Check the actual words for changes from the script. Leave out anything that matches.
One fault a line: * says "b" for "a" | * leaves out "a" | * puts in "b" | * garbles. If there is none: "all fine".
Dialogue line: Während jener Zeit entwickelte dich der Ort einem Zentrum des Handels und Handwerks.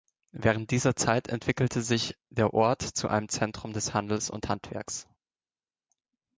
* says "dieser" for "jener"
* says "sich" for "dich"
* puts in "zu"